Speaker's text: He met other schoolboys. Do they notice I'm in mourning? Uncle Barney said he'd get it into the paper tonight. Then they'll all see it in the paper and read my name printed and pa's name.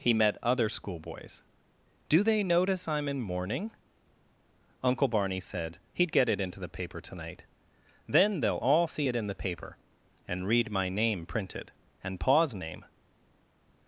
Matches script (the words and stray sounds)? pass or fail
pass